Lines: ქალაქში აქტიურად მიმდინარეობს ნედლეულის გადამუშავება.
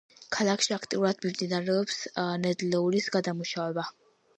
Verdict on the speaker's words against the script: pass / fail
pass